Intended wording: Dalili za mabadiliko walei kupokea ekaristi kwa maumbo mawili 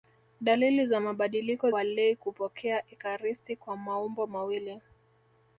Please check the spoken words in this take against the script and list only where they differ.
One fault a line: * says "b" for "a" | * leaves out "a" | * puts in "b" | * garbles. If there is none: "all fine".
all fine